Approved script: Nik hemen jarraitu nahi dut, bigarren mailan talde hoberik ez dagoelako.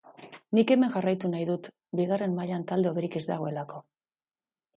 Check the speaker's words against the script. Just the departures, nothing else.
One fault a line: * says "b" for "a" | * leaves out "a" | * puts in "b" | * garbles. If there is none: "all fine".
all fine